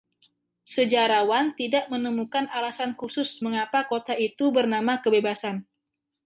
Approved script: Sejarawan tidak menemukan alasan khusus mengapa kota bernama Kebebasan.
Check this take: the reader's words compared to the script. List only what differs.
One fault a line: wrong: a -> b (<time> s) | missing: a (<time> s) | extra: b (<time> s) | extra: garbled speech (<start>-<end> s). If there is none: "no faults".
extra: itu (4.1 s)